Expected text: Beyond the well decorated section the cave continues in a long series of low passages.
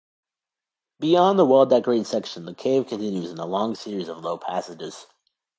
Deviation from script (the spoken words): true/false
false